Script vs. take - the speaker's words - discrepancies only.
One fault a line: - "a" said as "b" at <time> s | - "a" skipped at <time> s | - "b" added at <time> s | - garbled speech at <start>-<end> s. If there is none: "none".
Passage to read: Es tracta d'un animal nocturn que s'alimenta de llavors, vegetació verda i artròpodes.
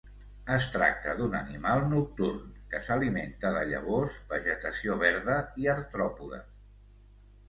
none